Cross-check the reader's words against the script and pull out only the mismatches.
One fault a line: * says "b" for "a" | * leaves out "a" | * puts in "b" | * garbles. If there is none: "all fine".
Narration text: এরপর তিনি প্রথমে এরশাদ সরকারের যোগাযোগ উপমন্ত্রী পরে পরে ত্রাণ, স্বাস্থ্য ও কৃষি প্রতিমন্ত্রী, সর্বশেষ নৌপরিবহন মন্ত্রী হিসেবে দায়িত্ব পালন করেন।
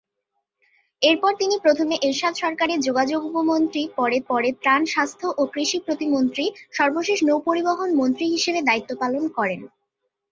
all fine